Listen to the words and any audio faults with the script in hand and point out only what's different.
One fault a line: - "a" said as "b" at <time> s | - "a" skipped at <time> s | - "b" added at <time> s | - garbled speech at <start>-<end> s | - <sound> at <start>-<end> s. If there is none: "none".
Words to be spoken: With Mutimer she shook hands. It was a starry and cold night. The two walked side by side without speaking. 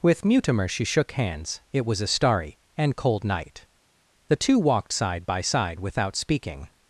none